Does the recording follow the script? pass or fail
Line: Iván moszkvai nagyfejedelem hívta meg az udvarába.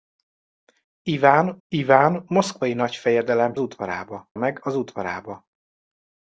fail